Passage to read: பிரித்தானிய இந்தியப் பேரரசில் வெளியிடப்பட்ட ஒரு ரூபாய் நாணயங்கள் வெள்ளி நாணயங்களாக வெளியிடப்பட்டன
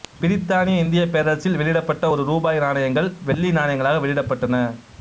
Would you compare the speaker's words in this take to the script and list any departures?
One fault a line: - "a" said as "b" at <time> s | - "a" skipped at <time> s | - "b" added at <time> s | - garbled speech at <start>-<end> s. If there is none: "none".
none